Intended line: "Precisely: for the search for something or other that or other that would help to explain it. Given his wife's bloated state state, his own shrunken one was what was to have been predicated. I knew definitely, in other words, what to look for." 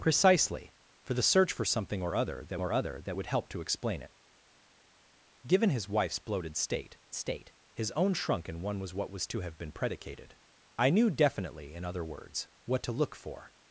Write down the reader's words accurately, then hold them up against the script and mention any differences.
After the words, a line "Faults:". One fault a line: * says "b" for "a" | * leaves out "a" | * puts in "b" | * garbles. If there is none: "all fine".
"Precisely: for the search for something or other that or other that would help to explain it. Given his wife's bloated state state, his own shrunken one was what was to have been predicated. I knew definitely, in other words, what to look for."
Faults:
all fine